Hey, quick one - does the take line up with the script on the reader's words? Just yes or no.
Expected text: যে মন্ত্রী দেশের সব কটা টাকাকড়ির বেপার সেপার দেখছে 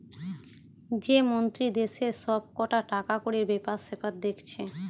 yes